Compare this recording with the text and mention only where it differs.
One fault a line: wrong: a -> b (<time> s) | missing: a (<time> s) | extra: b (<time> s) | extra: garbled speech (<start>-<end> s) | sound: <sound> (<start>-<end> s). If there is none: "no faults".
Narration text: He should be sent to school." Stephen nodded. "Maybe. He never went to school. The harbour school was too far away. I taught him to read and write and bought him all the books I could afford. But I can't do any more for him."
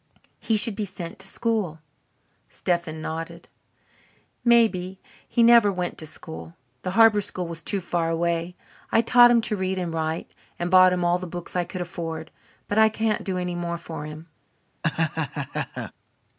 sound: laugh (14.8-15.9 s)